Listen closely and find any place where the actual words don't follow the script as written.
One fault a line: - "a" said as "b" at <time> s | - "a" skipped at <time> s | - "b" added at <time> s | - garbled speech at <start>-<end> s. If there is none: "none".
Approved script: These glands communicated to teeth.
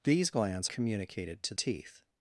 none